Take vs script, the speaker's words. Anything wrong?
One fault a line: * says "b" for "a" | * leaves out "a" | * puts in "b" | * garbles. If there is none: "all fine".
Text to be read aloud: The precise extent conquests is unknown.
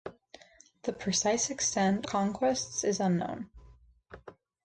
all fine